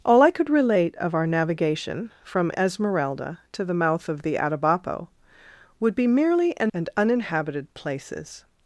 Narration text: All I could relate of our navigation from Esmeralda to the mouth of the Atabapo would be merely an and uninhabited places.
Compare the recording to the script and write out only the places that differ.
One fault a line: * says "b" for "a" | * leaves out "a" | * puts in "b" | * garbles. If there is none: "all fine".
all fine